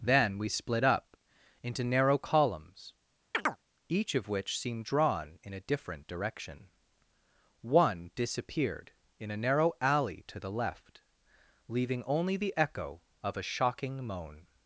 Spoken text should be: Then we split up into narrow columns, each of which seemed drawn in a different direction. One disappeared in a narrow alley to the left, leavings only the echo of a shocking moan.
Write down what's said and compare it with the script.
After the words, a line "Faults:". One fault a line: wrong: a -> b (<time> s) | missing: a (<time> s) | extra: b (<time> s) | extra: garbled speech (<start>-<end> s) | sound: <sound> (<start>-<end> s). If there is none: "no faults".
Then we split up into narrow columns, each of which seemed drawn in a different direction. One disappeared in a narrow alley to the left, leaving only the echo of a shocking moan.
Faults:
sound: chirp (3.3-3.6 s)
wrong: leavings -> leaving (11.7 s)